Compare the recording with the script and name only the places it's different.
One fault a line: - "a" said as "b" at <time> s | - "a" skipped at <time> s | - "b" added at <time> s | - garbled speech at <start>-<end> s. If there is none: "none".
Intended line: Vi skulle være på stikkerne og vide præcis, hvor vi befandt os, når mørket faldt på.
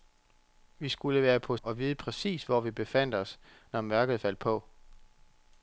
- "stikkerne" skipped at 1.6 s